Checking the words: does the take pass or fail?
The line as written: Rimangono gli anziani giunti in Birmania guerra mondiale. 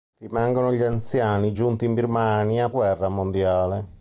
pass